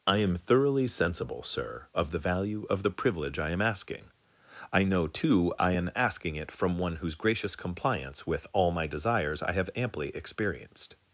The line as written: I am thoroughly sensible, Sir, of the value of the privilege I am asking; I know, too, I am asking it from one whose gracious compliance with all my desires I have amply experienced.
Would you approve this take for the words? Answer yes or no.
yes